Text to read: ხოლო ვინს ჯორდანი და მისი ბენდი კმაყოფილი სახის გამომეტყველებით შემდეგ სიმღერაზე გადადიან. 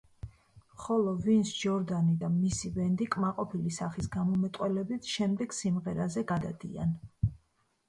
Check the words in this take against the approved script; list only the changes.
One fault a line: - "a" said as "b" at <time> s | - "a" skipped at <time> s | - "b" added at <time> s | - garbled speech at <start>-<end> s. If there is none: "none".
none